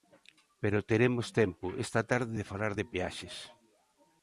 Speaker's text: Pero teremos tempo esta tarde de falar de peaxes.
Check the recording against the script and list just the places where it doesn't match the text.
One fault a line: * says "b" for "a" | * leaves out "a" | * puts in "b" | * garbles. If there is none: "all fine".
all fine